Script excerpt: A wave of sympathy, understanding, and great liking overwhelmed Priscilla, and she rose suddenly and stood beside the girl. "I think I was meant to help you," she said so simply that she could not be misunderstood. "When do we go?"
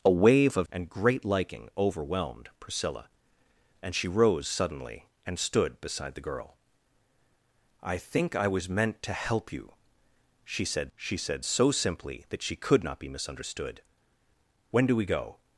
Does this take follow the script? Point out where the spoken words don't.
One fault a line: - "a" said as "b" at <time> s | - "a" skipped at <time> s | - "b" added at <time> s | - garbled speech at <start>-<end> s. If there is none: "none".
- "sympathy understanding" skipped at 0.7 s
- "she said" added at 11.0 s